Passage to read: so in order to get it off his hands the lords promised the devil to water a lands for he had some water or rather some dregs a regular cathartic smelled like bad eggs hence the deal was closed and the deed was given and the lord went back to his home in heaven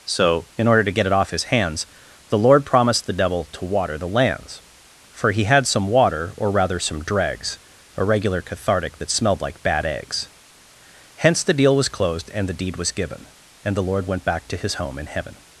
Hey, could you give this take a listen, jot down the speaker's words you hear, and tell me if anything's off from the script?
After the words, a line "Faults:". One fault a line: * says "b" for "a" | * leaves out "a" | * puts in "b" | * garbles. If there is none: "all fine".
so in order to get it off his hands the lord promised the devil to water the lands for he had some water or rather some dregs a regular cathartic that smelled like bad eggs hence the deal was closed and the deed was given and the lord went back to his home in heaven
Faults:
* says "lord" for "lords"
* says "the" for "a"
* puts in "that"